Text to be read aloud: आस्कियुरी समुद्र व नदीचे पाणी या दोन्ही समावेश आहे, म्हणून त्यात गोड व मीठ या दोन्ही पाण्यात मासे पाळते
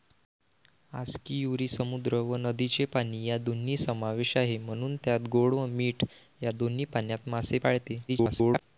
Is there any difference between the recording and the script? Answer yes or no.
yes